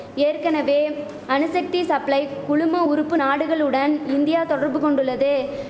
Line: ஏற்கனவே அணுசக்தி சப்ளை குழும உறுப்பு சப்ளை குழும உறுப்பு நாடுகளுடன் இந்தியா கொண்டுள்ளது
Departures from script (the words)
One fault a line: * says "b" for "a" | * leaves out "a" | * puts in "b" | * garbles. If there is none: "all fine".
* leaves out "சப்ளை குழும உறுப்பு"
* puts in "தொடர்பு"